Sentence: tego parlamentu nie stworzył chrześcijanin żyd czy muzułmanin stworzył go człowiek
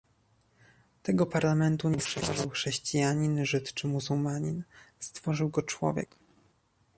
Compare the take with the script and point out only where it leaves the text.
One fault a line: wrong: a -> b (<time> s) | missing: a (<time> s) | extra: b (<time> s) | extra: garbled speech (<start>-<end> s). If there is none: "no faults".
no faults